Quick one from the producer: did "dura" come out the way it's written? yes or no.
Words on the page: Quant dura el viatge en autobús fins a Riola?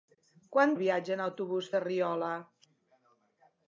no